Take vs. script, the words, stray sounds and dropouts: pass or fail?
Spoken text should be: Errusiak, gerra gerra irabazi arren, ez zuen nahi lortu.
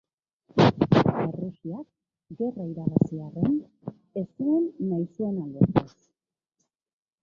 fail